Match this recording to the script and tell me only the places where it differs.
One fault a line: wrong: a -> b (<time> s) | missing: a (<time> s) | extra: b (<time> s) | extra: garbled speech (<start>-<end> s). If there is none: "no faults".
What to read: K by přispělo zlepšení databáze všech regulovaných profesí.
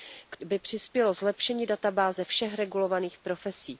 no faults